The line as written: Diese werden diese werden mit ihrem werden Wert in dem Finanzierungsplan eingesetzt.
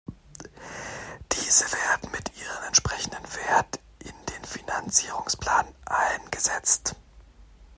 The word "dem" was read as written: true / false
false